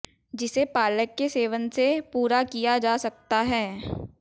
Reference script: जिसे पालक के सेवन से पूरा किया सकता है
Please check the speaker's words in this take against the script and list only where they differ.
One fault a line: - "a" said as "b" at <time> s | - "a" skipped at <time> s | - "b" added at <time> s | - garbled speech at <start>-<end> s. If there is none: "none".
- "जा" added at 2.8 s